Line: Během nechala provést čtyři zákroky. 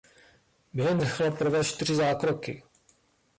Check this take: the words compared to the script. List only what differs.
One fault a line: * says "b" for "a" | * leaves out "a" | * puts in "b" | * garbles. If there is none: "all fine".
all fine